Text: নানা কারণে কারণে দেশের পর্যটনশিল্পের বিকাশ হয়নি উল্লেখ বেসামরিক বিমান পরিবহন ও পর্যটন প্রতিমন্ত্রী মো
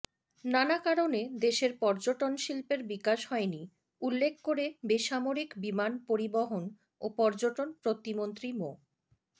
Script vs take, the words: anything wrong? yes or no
yes